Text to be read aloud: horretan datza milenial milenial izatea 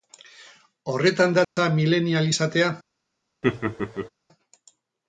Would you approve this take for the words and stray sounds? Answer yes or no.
no